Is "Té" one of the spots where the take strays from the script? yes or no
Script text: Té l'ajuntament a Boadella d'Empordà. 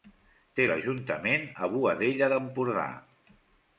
no